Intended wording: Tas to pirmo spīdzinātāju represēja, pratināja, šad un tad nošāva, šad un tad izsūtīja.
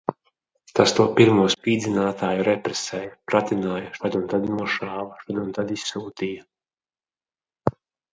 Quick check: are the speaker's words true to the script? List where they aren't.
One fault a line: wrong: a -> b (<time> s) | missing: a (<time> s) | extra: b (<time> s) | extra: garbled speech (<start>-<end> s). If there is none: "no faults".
no faults